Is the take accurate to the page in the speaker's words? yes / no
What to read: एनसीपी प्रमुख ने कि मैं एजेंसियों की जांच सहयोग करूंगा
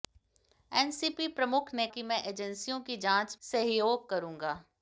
yes